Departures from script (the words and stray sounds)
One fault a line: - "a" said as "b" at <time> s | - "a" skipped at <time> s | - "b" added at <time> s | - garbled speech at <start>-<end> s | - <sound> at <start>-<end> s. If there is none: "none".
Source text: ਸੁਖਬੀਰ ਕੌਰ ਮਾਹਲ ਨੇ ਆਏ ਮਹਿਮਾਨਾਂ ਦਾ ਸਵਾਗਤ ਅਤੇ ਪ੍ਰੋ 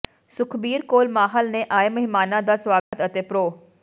- dropout at 2.8-2.9 s